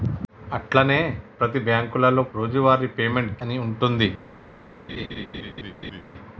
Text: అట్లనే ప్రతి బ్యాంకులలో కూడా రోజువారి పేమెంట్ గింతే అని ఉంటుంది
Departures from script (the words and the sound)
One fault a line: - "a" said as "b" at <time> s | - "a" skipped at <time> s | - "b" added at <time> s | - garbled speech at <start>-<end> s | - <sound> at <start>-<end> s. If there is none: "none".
- "కూడా" skipped at 2.2 s
- "గింతే" skipped at 3.4 s
- laugh at 4.9-6.0 s